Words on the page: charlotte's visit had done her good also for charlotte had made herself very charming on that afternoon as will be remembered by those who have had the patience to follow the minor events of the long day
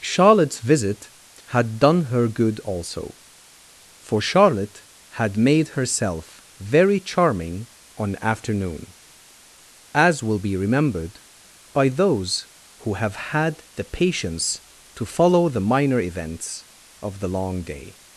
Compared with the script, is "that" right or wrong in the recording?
wrong